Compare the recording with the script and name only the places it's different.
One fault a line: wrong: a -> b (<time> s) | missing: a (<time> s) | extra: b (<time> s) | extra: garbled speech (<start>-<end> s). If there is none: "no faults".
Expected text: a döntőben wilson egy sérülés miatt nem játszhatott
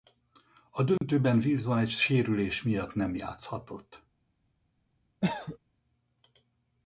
no faults